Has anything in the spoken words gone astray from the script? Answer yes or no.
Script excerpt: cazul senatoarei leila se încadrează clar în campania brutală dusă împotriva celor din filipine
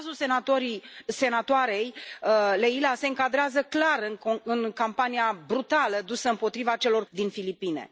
no